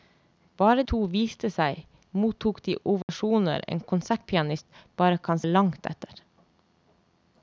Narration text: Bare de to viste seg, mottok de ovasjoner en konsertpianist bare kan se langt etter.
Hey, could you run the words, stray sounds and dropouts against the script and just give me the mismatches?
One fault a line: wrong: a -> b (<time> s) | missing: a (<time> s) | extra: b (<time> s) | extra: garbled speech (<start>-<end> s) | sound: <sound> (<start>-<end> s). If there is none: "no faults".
missing: de (0.8 s)
sound: dropout (3.0-3.1 s)
missing: se (5.4 s)